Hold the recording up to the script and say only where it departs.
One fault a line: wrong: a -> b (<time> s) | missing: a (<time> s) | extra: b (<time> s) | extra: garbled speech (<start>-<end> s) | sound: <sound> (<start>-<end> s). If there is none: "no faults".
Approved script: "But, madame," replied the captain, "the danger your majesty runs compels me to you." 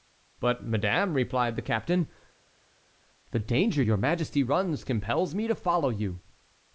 extra: follow (5.6 s)